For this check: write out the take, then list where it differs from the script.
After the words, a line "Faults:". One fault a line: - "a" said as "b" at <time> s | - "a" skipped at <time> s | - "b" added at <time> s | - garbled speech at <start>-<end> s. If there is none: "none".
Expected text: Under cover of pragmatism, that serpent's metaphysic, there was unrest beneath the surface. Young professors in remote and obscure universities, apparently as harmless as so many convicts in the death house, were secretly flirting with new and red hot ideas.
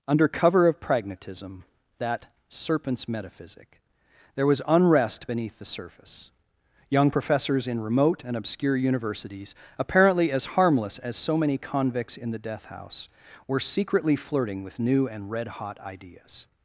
Under cover of pragmatism, that serpent's metaphysic, there was unrest beneath the surface. Young professors in remote and obscure universities, apparently as harmless as so many convicts in the death house, were secretly flirting with new and red hot ideas.
Faults:
none